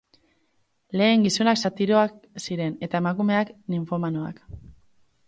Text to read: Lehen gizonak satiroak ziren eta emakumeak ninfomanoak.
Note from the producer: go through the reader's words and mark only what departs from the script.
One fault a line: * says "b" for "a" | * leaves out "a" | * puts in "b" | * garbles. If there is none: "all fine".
all fine